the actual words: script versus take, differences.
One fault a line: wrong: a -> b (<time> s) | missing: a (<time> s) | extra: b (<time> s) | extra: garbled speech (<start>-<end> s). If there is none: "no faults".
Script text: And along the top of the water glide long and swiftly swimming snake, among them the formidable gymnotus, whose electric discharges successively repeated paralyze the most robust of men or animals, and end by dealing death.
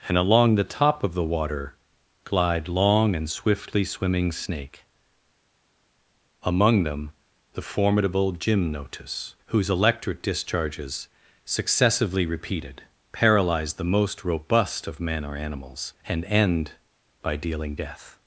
no faults